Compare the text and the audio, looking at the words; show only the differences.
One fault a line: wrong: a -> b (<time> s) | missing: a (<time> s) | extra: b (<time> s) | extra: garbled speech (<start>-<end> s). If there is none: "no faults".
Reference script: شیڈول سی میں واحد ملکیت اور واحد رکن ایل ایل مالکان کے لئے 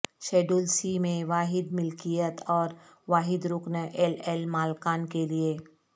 no faults